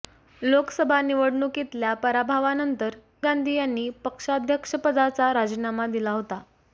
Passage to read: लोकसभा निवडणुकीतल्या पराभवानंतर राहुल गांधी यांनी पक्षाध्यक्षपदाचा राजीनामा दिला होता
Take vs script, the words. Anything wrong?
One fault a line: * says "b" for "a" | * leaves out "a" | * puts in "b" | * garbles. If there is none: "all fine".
* leaves out "राहुल"